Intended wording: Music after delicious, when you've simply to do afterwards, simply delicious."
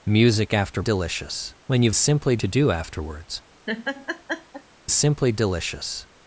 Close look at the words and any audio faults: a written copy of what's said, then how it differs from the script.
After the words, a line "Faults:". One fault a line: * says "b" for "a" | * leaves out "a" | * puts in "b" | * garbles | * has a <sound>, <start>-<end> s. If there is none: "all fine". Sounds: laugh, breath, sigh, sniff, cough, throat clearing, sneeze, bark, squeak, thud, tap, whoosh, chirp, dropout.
Music after delicious, when you've simply to do afterwards, simply delicious."
Faults:
* has a laugh, 3.7-4.6 s